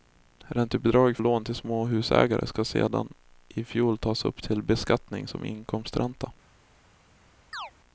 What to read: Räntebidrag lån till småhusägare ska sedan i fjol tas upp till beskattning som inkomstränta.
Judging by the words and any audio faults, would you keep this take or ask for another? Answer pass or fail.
fail